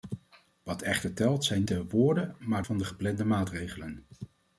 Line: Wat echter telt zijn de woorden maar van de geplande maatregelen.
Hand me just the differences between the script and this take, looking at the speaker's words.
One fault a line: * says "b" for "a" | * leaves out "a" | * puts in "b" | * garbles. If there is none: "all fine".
all fine